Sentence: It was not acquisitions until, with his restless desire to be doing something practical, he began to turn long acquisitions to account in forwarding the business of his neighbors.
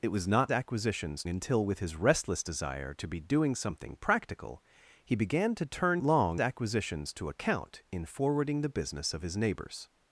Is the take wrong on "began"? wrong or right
right